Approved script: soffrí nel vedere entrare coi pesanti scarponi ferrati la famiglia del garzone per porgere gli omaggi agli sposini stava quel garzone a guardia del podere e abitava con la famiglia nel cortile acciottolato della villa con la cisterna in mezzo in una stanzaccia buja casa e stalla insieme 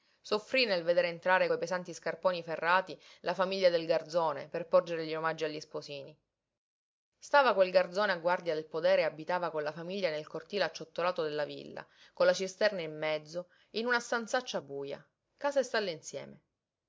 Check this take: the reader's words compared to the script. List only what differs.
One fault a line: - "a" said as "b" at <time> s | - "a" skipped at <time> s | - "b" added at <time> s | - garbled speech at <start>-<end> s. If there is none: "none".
none